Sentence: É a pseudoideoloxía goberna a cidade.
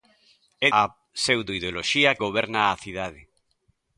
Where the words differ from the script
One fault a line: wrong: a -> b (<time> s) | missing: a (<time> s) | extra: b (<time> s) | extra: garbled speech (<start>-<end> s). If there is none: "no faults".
no faults